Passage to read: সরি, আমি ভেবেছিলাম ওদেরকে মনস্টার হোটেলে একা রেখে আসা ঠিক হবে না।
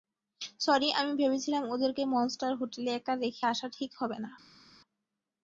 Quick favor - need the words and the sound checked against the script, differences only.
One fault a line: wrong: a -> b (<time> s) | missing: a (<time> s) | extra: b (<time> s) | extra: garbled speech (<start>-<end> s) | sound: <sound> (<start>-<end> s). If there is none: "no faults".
no faults